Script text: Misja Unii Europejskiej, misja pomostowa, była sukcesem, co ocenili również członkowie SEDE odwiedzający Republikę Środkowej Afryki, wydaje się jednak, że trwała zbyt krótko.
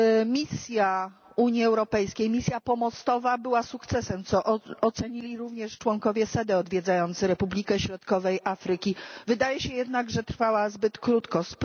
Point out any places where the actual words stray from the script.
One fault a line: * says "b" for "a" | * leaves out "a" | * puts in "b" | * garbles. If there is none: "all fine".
all fine